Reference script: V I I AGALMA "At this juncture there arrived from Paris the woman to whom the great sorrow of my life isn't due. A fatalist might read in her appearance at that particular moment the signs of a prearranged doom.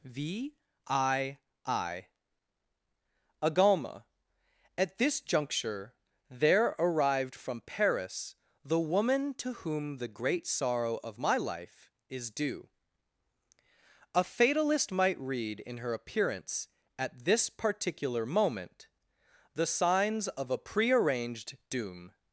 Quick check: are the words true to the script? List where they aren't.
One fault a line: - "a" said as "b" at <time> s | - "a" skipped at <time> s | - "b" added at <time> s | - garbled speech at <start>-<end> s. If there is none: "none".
- "isn't" said as "is" at 12.1 s
- "that" said as "this" at 17.2 s